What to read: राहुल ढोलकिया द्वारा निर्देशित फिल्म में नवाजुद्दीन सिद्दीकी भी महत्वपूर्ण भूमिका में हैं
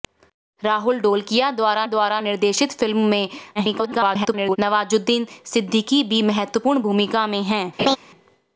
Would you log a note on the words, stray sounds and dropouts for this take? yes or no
yes